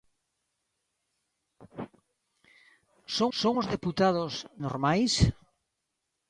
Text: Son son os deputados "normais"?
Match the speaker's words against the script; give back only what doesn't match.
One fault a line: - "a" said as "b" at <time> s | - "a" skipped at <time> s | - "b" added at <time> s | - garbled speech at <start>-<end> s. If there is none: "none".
none